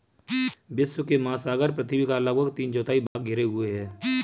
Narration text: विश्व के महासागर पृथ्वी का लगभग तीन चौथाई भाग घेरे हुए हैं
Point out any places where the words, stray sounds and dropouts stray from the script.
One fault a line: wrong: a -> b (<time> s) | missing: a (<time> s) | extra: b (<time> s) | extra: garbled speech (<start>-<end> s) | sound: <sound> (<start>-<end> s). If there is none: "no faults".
sound: dropout (3.1-3.2 s)